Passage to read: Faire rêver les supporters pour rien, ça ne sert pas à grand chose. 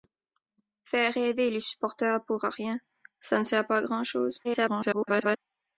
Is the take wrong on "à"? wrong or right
right